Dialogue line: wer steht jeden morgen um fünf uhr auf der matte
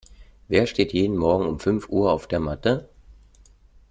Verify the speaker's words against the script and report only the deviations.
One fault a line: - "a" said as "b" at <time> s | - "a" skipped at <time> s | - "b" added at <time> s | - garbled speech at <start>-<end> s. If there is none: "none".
none